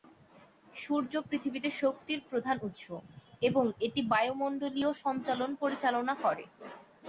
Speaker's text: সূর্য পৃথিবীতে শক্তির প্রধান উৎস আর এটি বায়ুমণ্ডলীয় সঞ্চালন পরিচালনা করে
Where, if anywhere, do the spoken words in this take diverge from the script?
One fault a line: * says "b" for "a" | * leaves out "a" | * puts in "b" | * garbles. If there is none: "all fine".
* says "এবং" for "আর"